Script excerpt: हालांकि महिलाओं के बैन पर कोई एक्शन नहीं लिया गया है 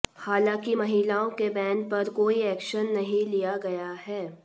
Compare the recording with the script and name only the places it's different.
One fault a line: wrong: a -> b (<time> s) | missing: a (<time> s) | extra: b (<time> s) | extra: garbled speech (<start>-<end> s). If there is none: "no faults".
no faults